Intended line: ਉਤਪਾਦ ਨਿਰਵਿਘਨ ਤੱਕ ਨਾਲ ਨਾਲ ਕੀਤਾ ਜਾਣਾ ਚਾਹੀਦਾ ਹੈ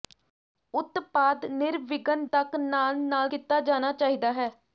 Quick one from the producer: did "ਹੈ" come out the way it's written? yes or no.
yes